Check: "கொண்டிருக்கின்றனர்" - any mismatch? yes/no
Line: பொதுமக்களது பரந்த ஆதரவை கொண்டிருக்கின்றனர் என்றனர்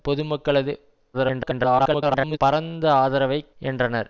yes